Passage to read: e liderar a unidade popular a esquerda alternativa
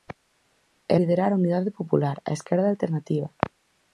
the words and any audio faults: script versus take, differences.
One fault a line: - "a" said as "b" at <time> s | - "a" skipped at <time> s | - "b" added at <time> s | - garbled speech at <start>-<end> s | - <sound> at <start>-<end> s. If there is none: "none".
none